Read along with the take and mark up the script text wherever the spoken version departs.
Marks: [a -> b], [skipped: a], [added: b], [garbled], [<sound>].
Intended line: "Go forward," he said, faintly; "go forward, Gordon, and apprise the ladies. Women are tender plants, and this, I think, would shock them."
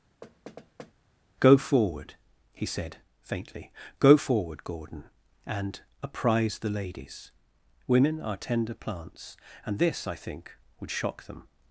[thud] "Go forward," he said, faintly; "go forward, Gordon, and apprise the ladies. Women are tender plants, and this, I think, would shock them."